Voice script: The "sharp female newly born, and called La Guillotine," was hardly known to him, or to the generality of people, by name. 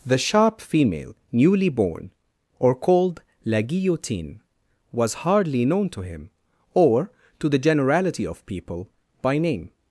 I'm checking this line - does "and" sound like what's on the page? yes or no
no